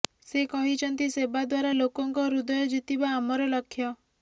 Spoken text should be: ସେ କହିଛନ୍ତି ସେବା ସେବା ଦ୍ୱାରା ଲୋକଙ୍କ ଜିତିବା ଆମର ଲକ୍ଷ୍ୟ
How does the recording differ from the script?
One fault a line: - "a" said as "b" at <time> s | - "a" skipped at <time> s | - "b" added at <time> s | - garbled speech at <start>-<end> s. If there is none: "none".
- "ସେବା" skipped at 1.4 s
- "ହୃଦୟ" added at 2.3 s